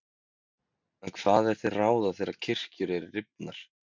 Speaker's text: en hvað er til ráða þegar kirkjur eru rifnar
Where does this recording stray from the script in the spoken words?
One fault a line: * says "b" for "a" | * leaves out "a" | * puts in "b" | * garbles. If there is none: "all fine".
all fine